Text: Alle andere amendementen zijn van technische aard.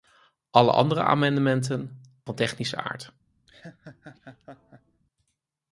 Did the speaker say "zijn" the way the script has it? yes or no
no